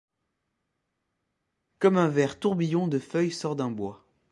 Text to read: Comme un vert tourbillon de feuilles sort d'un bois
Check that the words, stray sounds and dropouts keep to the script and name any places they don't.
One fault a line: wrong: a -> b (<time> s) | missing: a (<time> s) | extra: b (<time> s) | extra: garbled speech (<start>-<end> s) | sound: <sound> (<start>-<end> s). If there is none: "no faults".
no faults